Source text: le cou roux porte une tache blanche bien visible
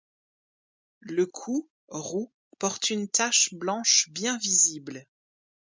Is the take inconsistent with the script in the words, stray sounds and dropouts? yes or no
no